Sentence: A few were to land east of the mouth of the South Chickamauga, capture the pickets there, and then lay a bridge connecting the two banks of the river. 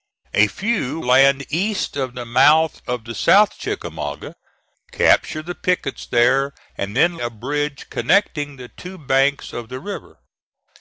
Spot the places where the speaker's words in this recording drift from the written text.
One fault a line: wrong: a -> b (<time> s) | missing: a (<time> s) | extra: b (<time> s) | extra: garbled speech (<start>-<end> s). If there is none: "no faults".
missing: were to (1.0 s)
missing: lay (7.2 s)